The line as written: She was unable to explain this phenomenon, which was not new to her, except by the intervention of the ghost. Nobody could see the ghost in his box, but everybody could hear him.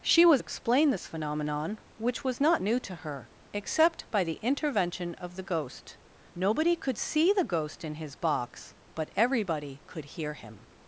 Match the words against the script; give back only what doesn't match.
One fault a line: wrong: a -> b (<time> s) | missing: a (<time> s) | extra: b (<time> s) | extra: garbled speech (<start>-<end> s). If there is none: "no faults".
missing: unable to (0.4 s)